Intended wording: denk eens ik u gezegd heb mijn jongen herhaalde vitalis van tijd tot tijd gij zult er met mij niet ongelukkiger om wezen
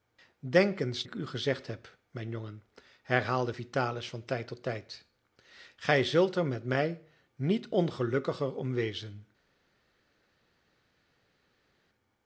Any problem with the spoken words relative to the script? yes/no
no